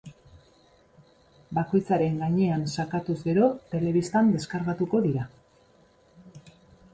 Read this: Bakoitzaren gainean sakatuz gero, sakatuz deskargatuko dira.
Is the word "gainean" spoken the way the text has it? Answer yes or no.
yes